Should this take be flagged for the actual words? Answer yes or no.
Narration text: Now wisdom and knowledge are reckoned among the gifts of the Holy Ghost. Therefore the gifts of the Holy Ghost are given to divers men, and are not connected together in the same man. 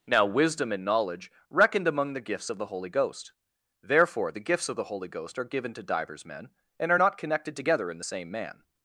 yes